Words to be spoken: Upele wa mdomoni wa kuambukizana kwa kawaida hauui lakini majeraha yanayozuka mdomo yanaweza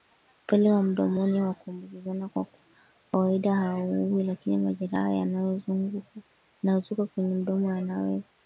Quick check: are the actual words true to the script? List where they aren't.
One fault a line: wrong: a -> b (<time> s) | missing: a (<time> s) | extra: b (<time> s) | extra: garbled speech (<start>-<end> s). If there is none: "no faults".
extra: kwenye (7.0 s)